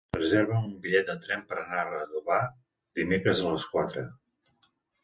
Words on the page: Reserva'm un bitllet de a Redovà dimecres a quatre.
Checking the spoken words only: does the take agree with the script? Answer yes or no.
no